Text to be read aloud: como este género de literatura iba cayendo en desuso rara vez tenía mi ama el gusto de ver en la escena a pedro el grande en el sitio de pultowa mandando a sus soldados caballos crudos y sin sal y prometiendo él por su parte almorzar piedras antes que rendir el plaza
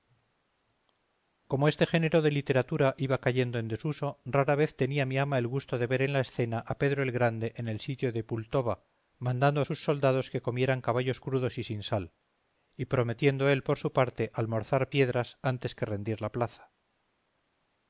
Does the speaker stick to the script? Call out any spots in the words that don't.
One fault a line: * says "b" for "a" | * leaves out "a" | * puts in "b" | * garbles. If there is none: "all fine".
* puts in "que comieran"
* says "la" for "el"